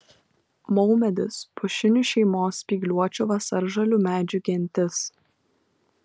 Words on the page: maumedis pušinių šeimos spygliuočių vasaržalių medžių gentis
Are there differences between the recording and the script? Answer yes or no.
no